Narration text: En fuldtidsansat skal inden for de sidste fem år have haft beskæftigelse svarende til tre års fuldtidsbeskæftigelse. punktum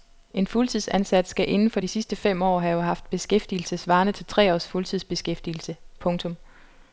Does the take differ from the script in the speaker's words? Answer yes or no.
no